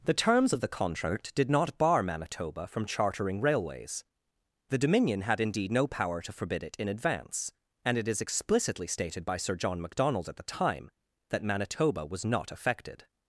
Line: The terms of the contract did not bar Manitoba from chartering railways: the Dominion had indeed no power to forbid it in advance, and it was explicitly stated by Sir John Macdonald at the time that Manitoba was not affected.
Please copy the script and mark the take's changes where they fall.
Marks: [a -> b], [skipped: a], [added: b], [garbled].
The terms of the contract did not bar Manitoba from chartering railways: the Dominion had indeed no power to forbid it in advance, and it [was -> is] explicitly stated by Sir John Macdonald at the time that Manitoba was not affected.